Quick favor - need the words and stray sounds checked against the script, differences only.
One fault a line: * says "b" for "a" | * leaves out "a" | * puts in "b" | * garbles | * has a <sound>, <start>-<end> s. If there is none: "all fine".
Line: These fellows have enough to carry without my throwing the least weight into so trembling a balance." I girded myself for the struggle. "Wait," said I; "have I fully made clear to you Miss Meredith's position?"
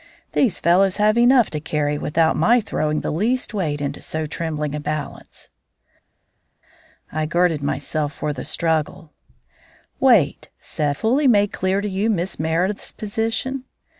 * leaves out "I have I"